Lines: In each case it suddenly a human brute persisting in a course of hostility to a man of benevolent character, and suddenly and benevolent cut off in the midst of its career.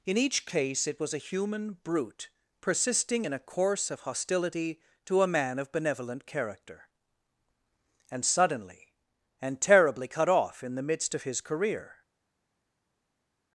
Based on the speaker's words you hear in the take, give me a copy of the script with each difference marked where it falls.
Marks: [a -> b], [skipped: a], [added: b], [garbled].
In each case it [suddenly -> was] a human brute persisting in a course of hostility to a man of benevolent character, and suddenly and [benevolent -> terribly] cut off in the midst of [its -> his] career.